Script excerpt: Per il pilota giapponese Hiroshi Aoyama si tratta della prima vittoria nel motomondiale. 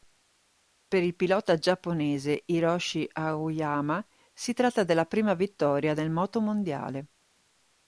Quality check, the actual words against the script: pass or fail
pass